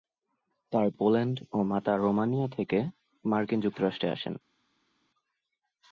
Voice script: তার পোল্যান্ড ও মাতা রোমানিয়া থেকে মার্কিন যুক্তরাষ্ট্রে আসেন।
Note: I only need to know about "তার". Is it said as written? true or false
true